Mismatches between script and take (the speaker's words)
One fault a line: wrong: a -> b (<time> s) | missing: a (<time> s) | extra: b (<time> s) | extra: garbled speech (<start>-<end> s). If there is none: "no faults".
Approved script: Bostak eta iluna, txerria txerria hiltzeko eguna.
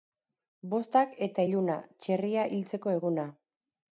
missing: txerria (2.4 s)